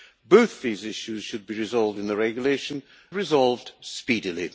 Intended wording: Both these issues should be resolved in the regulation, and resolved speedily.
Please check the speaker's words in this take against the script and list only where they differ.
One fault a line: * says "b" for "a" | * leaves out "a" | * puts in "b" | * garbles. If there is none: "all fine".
* leaves out "and"